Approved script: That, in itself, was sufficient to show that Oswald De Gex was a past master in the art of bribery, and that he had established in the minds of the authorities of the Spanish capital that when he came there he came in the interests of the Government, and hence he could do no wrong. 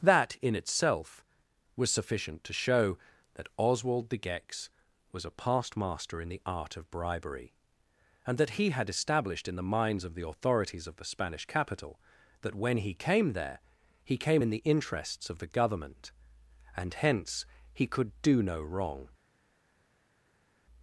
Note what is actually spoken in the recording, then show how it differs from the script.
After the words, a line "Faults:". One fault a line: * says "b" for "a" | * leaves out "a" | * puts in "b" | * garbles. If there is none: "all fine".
That, in itself, was sufficient to show that Oswald De Gex was a past master in the art of bribery, and that he had established in the minds of the authorities of the Spanish capital that when he came there he came in the interests of the Government, and hence he could do no wrong.
Faults:
all fine